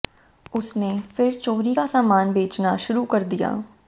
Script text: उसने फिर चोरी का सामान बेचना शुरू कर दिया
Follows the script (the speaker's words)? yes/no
yes